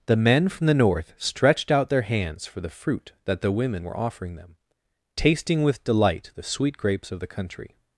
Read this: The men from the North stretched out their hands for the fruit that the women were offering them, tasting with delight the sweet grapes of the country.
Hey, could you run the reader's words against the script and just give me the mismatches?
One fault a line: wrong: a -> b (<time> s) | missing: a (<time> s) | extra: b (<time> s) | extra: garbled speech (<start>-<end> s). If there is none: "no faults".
no faults